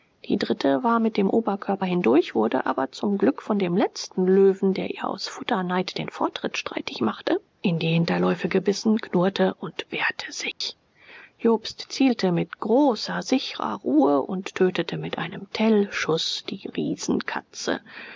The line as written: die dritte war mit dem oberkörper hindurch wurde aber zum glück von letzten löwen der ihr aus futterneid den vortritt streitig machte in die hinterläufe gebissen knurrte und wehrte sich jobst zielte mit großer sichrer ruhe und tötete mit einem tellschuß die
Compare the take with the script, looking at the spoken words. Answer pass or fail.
fail